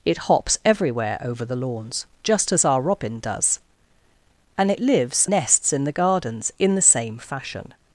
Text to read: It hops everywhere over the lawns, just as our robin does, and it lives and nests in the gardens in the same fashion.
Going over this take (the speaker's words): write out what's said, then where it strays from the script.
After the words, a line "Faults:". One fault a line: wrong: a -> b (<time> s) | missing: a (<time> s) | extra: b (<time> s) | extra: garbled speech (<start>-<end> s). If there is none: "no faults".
It hops everywhere over the lawns, just as our robin does, and it lives nests in the gardens in the same fashion.
Faults:
missing: and (5.3 s)